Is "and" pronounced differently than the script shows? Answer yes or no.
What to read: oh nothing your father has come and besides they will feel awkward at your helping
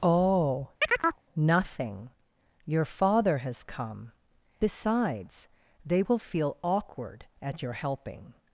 yes